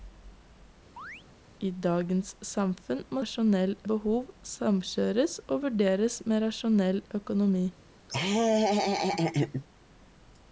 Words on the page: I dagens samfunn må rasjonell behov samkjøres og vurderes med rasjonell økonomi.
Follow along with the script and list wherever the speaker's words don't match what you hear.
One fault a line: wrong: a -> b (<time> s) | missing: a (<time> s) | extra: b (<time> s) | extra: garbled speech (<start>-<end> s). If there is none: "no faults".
no faults